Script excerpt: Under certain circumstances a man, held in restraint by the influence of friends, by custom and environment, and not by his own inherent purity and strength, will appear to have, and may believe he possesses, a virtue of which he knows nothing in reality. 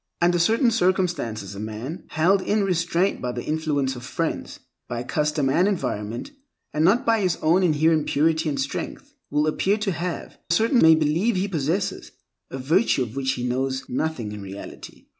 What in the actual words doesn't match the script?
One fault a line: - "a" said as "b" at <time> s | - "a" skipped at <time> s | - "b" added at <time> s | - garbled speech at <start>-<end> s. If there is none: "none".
- "and" said as "certain" at 10.5 s